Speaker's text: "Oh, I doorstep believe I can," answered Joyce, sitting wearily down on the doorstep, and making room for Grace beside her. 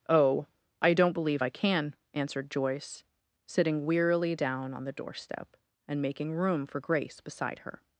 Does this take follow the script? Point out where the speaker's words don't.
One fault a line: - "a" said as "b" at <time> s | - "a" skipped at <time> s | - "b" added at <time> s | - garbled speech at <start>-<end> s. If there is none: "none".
- "doorstep" said as "don't" at 0.9 s